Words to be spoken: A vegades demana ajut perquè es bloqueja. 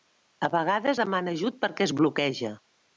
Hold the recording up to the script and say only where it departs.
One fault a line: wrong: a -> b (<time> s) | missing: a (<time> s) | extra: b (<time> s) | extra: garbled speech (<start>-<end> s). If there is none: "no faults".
no faults